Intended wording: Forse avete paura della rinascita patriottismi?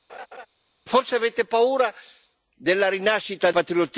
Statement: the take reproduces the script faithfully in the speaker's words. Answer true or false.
true